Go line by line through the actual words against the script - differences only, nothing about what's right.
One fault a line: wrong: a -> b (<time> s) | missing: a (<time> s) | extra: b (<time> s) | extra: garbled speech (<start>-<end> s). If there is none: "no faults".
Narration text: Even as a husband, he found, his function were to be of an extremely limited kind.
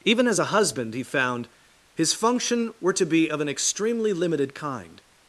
no faults